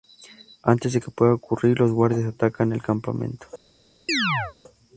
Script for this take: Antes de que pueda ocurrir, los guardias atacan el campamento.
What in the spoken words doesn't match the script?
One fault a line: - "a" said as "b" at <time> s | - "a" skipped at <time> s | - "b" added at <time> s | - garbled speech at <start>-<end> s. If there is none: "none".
none